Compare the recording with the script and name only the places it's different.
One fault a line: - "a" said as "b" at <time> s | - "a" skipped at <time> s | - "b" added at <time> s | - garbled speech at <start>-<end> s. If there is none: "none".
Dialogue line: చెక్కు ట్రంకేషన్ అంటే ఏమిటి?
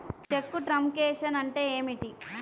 none